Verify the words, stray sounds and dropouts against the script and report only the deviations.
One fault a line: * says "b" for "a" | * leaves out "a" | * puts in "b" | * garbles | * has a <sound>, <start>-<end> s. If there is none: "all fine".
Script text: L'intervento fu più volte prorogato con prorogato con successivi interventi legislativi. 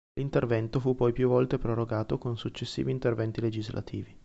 * puts in "poi"
* leaves out "prorogato con"